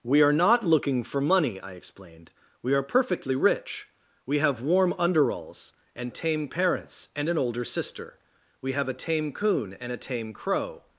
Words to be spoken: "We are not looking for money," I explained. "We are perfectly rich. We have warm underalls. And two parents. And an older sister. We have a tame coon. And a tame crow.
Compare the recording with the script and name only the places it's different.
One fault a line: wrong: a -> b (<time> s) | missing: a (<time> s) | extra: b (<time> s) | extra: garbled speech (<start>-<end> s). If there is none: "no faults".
wrong: two -> tame (6.1 s)